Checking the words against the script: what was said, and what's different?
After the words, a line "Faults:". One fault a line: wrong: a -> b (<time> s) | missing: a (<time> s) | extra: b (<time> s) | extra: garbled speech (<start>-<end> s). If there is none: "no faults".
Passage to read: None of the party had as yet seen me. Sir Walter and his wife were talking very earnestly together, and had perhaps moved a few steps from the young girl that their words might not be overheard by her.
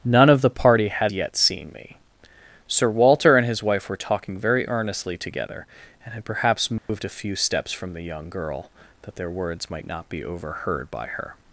None of the party had yet seen me. Sir Walter and his wife were talking very earnestly together, and had perhaps moved a few steps from the young girl that their words might not be overheard by her.
Faults:
missing: as (1.1 s)